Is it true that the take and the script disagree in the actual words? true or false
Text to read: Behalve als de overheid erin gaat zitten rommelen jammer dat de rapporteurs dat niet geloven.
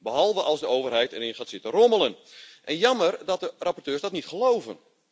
false